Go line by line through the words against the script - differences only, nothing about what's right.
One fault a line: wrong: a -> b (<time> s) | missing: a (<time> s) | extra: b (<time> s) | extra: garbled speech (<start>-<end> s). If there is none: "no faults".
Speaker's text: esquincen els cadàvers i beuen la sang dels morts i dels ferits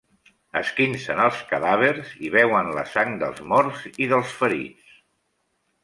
no faults